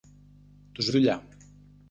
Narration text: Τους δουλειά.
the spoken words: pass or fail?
pass